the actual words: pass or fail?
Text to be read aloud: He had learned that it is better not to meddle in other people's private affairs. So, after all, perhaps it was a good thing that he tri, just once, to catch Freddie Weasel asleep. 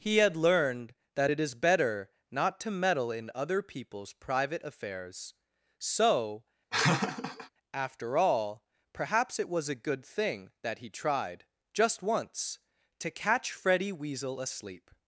fail